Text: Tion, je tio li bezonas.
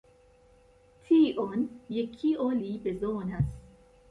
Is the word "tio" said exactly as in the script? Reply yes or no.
no